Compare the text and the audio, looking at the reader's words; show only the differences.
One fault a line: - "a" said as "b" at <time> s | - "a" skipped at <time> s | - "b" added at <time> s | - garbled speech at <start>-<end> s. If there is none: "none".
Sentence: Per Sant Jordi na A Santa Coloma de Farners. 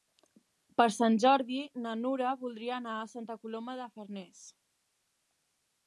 - "Nura voldria anar" added at 2.0 s